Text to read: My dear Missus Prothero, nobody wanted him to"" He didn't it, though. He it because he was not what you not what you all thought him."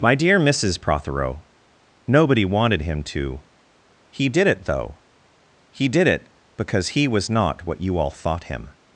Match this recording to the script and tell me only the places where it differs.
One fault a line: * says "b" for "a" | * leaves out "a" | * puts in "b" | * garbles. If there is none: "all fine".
* says "did" for "didn't"
* puts in "did"
* leaves out "not what you"